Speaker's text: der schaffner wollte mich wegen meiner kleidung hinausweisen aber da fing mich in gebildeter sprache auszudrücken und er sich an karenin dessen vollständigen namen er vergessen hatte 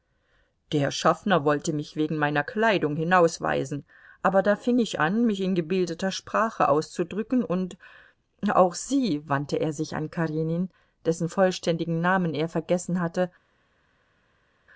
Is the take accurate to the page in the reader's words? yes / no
no